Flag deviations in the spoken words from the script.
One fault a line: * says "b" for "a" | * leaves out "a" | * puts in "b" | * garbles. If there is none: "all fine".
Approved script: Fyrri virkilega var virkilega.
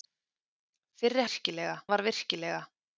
all fine